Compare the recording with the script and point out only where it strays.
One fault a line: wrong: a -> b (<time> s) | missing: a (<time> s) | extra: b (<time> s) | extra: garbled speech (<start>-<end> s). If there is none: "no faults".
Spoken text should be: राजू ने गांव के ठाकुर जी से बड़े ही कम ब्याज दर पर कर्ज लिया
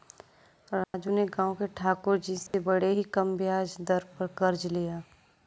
no faults